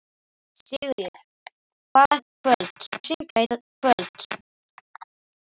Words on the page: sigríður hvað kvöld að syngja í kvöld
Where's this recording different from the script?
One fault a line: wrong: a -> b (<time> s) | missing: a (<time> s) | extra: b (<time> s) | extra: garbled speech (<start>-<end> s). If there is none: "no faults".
no faults